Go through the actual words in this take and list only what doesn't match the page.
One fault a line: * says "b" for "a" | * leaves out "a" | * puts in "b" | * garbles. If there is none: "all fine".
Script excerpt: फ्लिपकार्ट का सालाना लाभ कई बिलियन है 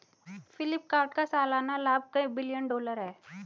* puts in "डॉलर"